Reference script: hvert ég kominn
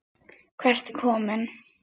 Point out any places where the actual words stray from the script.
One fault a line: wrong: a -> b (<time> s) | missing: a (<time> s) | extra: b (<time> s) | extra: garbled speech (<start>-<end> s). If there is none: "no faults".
no faults